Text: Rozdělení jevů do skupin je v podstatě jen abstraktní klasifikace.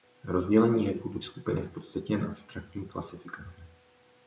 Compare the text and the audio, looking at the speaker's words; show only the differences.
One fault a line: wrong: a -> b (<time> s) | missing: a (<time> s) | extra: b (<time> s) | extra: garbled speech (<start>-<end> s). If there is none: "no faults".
no faults